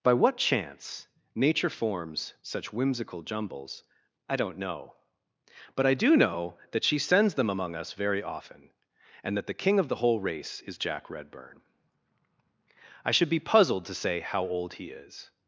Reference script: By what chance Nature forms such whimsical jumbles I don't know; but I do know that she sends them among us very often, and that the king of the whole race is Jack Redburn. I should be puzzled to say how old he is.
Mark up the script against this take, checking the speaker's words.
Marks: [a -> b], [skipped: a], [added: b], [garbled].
By what chance Nature forms such whimsical jumbles I don't know; but I do know that she sends them among us very often, and that the king of the whole race is Jack Redburn. I should be puzzled to say how old he is.